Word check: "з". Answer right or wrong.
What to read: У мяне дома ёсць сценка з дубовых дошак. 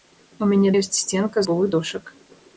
wrong